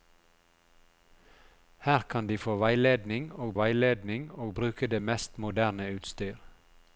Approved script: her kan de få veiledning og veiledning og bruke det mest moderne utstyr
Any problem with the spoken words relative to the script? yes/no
no